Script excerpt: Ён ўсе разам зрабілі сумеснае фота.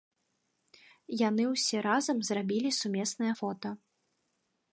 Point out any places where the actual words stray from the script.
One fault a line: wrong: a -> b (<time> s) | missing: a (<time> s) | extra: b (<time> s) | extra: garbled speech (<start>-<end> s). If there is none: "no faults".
wrong: Ён -> Яны (1.3 s)